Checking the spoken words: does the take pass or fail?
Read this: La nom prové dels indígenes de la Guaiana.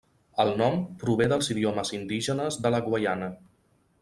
fail